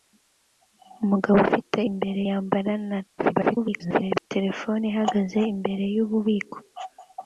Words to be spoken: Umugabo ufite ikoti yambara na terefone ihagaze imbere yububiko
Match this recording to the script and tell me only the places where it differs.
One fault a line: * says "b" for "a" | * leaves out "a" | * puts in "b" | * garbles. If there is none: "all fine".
* says "imbere" for "ikoti"
* garbles